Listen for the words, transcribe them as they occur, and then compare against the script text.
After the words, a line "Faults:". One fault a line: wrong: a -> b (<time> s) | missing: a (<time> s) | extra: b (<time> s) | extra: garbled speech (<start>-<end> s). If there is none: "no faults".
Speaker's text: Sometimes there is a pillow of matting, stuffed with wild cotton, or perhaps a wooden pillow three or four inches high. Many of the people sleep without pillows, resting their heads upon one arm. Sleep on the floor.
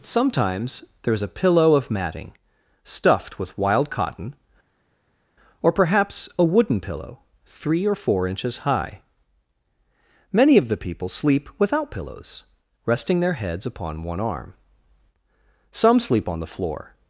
Sometimes there is a pillow of matting, stuffed with wild cotton, or perhaps a wooden pillow three or four inches high. Many of the people sleep without pillows, resting their heads upon one arm. Some sleep on the floor.
Faults:
extra: Some (15.7 s)